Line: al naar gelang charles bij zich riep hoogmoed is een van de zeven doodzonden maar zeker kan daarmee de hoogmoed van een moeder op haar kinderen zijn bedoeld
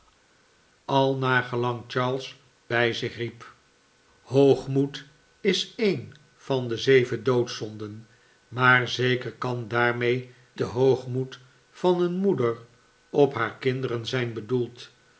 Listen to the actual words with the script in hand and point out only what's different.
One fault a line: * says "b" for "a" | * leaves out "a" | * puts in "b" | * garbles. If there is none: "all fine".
all fine